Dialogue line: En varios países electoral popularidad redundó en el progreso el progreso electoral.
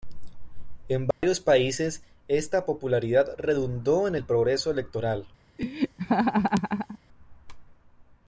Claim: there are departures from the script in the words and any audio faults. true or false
true